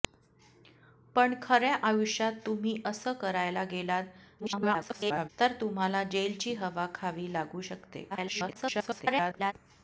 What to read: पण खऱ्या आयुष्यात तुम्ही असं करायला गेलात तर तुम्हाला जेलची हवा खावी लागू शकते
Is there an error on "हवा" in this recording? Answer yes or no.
no